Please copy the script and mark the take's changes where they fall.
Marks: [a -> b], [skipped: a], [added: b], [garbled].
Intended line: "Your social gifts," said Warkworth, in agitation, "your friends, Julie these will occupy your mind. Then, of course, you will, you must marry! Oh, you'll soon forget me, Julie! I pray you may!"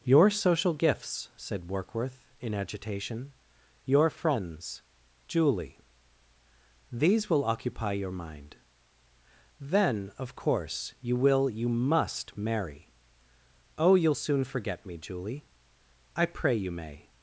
"Your social gifts," said Warkworth, in agitation, "your friends, Julie these will occupy your mind. Then, of course, you will, you must marry! Oh, you'll soon forget me, Julie! I pray you may!"